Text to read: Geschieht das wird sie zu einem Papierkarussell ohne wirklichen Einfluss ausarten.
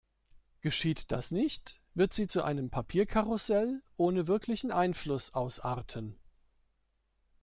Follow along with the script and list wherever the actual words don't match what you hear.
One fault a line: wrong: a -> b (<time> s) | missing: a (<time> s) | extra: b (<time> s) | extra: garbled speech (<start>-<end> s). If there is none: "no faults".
extra: nicht (1.3 s)